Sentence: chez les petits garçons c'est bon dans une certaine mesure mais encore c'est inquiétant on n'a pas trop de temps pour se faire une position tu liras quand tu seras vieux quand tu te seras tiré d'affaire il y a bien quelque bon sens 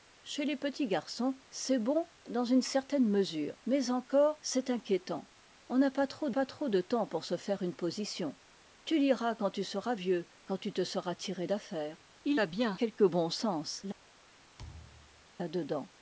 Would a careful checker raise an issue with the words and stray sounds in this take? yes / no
yes